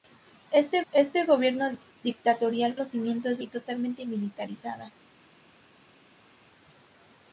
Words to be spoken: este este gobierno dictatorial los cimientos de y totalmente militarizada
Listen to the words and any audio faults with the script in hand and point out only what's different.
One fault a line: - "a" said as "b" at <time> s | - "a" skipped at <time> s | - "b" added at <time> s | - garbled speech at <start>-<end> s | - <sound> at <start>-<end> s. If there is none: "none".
none